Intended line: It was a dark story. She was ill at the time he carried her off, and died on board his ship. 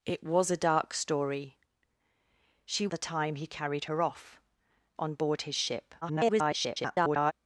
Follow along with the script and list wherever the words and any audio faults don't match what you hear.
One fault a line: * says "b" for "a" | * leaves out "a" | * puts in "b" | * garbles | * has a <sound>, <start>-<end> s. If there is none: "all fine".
* leaves out "was ill at"
* leaves out "and died"
* garbles